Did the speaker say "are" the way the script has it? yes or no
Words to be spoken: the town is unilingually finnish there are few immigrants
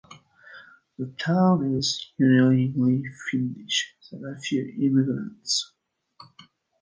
yes